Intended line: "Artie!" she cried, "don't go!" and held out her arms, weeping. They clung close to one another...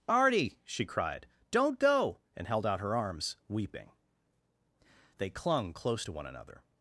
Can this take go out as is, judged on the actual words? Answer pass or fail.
pass